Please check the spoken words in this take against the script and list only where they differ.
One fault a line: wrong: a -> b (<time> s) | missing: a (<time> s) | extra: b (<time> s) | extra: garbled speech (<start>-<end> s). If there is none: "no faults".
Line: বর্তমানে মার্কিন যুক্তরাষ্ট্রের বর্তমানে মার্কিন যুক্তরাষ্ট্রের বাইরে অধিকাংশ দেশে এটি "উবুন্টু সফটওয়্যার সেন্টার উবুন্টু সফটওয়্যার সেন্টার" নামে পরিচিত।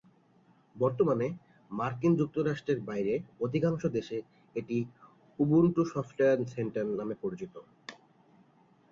missing: বর্তমানে মার্কিন যুক্তরাষ্ট্রের (2.8 s)
missing: উবুন্টু সফটওয়্যার সেন্টার (6.8 s)